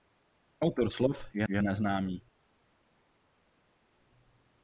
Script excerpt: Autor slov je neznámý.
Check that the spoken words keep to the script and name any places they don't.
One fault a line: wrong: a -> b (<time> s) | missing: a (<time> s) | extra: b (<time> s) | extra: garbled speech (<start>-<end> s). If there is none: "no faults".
extra: je (1.5 s)